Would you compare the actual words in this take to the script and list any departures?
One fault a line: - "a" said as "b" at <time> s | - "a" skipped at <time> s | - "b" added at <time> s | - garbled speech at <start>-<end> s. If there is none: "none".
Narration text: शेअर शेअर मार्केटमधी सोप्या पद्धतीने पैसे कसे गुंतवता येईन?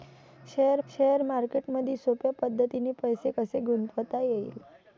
none